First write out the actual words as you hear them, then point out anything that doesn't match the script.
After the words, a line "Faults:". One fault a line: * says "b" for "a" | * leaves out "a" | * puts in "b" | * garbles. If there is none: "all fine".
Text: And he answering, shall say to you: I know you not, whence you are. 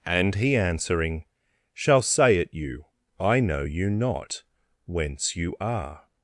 And he answering, shall say at you: I know you not, whence you are.
Faults:
* says "at" for "to"